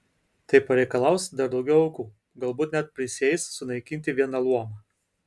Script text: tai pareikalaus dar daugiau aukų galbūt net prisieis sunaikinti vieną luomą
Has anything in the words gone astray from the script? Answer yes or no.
no